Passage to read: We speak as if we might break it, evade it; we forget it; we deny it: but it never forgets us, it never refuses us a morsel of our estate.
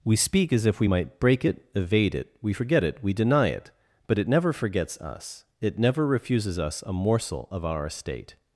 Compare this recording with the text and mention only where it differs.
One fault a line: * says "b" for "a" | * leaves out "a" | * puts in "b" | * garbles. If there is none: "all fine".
all fine